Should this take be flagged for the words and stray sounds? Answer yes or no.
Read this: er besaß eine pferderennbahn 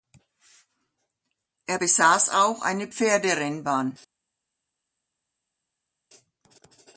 yes